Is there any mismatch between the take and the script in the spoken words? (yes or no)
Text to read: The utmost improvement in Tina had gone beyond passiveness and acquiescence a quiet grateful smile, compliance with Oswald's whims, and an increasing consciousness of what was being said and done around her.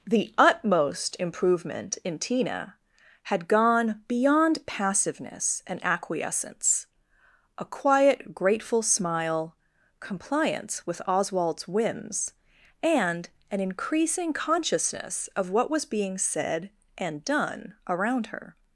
no